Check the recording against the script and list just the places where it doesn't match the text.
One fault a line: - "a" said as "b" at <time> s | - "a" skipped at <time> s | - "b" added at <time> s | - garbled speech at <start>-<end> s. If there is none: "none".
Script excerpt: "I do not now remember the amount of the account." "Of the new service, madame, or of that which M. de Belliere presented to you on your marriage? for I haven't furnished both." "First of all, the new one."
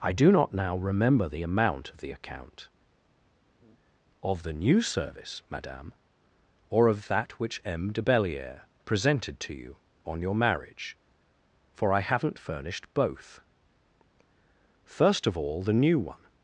none